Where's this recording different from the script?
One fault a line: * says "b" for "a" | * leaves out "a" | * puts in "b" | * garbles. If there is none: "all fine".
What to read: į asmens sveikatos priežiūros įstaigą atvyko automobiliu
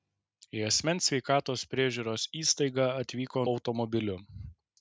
all fine